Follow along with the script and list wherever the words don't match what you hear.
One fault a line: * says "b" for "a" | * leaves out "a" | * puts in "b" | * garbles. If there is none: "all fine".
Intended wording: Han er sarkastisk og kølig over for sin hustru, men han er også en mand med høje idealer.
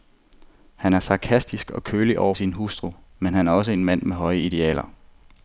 * leaves out "for"